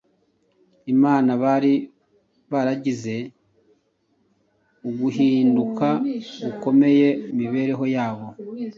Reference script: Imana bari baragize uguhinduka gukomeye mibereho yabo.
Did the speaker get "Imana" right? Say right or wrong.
right